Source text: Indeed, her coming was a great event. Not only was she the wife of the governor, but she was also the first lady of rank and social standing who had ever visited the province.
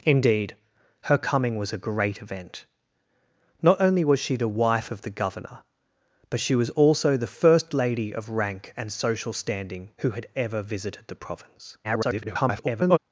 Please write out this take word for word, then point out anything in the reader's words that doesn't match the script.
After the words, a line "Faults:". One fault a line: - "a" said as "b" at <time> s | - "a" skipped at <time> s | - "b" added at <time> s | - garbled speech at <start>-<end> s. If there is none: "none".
Indeed, her coming was a great event. Not only was she the wife of the governor, but she was also the first lady of rank and social standing who had ever visited the province. [garbled]
Faults:
- garbled speech at 11.8-13.0 s